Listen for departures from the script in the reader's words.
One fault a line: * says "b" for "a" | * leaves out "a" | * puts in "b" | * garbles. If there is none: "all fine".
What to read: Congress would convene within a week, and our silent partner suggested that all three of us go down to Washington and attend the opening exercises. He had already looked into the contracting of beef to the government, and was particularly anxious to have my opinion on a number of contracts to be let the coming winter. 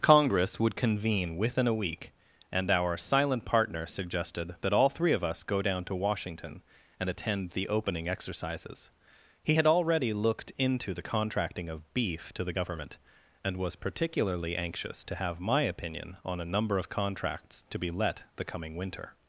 all fine